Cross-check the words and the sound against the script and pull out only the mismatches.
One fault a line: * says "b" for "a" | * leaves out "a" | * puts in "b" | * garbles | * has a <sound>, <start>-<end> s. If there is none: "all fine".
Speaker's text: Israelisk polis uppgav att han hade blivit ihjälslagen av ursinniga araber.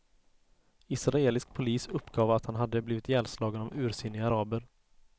all fine